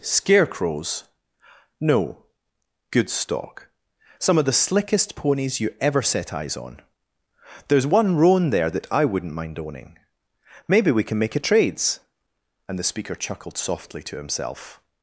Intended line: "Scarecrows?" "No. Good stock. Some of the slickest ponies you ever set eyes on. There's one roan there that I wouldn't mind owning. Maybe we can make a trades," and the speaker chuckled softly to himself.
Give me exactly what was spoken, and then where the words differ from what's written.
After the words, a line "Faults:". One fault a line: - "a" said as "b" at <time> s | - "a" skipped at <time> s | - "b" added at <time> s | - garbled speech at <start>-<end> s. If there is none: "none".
"Scarecrows?" "No. Good stock. Some of the slickest ponies you ever set eyes on. There's one roan there that I wouldn't mind owning. Maybe we can make a trades," and the speaker chuckled softly to himself.
Faults:
none